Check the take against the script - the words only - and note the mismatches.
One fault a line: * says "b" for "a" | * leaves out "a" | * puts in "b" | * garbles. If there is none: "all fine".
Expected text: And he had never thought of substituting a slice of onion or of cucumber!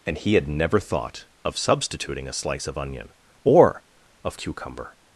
all fine